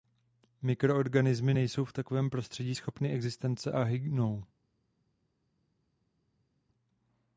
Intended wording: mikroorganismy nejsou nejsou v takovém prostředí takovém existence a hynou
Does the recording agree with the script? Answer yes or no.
no